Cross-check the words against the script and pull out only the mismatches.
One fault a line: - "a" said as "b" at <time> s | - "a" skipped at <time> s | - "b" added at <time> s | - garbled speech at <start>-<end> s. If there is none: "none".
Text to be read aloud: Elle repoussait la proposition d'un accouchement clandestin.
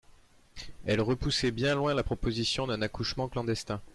- "bien loin" added at 1.5 s